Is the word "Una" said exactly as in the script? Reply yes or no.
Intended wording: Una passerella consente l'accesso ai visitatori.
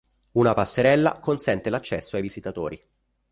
yes